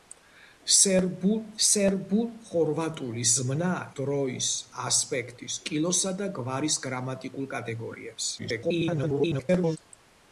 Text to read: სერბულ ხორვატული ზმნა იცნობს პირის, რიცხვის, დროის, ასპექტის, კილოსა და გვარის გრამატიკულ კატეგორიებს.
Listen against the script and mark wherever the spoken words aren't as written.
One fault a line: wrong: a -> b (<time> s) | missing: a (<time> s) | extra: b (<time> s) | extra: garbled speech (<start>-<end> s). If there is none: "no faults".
extra: სერბულ (1.7 s)
missing: იცნობს პირის რიცხვის (3.7 s)
extra: garbled speech (8.4-9.8 s)